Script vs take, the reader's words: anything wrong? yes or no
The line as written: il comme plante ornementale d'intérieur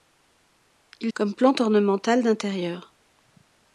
no